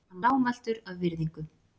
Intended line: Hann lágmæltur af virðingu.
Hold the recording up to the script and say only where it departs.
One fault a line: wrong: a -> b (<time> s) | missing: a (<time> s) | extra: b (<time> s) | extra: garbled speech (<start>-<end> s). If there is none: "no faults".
no faults